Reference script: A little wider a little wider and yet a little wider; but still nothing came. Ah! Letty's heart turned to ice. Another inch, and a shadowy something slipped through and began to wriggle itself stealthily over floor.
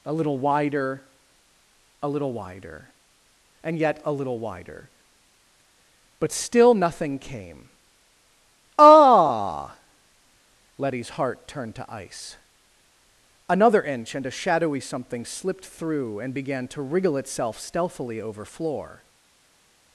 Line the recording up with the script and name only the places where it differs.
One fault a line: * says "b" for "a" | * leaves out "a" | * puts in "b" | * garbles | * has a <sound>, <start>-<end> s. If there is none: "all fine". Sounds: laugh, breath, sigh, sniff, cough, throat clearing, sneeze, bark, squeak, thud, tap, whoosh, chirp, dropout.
all fine